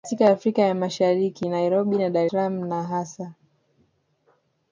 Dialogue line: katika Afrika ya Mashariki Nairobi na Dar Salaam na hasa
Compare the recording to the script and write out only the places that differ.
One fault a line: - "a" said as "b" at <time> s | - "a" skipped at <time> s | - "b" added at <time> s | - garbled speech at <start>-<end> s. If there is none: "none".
none